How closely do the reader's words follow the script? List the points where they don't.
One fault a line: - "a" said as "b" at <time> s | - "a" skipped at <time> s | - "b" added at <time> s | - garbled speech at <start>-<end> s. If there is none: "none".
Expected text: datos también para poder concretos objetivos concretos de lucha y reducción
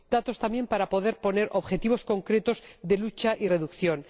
- "concretos" said as "poner" at 1.2 s